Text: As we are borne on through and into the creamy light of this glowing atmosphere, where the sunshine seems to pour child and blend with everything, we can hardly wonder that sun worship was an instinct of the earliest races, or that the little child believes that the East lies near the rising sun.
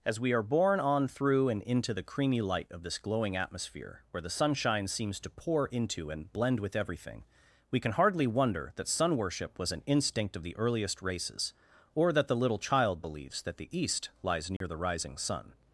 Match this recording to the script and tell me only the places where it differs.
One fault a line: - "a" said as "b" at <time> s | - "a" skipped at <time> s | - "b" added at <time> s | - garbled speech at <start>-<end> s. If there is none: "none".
- "child" said as "into" at 5.7 s